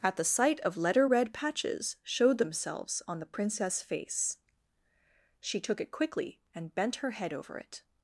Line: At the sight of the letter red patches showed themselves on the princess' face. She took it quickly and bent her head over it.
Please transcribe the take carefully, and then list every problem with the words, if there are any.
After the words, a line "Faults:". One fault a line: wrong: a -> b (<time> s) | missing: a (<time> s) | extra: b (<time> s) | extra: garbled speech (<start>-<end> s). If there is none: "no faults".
At the sight of letter red patches showed themselves on the princess' face. She took it quickly and bent her head over it.
Faults:
missing: the (0.8 s)